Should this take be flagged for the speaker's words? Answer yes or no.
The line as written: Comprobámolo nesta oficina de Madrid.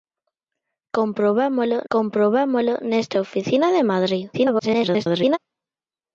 yes